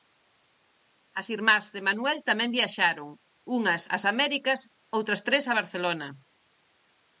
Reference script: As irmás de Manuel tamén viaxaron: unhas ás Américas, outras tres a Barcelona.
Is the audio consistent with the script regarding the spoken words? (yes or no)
yes